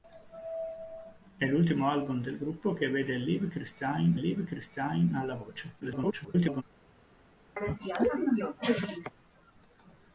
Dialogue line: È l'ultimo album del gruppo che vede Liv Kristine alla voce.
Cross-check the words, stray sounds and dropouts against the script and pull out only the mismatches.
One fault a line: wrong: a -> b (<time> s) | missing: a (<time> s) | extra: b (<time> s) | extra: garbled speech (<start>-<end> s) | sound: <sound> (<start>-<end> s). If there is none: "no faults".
extra: Liv Kristine (4.1 s)
extra: garbled speech (5.8-6.6 s)
sound: cough (7.6-9.1 s)